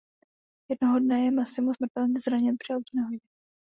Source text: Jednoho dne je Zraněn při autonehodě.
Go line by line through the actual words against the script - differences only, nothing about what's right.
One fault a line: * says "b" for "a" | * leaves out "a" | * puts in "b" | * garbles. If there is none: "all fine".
* puts in "Massimo smrtelně"